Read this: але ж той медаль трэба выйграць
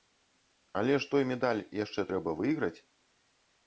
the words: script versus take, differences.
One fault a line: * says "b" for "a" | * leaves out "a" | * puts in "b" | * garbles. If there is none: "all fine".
* puts in "яшчэ"